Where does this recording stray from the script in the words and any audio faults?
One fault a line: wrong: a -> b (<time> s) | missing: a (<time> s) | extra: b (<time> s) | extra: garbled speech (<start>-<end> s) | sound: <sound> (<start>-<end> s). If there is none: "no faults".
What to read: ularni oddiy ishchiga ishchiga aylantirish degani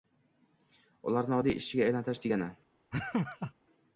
missing: ishchiga (1.9 s)
sound: laugh (2.9-3.5 s)